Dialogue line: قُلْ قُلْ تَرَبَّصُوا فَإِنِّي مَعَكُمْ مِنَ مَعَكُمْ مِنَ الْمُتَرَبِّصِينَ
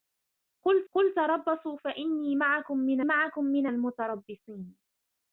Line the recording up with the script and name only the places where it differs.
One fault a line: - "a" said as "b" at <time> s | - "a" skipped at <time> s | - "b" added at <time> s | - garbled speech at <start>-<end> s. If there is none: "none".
none